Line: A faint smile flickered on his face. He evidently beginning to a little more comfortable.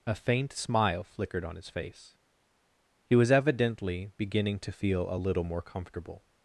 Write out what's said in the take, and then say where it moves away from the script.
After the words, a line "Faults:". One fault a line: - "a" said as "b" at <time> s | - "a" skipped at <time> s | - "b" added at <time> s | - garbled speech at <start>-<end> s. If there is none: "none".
A faint smile flickered on his face. He was evidently beginning to feel a little more comfortable.
Faults:
- "was" added at 3.2 s
- "feel" added at 4.7 s